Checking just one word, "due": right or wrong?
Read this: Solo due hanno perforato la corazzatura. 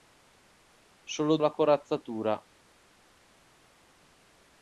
wrong